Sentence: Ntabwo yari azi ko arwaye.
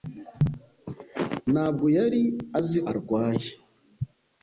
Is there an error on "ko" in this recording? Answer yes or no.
yes